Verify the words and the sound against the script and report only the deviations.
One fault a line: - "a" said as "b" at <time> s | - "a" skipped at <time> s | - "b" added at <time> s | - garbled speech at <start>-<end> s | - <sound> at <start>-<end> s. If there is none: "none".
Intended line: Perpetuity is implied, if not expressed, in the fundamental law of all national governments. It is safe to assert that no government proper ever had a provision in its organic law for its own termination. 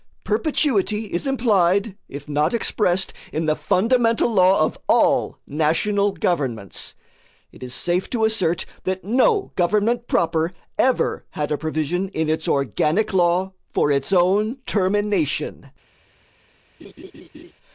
- laugh at 16.8-17.5 s